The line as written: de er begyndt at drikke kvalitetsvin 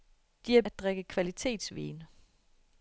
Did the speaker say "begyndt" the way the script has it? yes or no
no